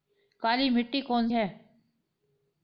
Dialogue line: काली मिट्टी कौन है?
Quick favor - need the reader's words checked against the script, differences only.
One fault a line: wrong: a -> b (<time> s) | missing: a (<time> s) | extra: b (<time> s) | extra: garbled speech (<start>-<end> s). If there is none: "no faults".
no faults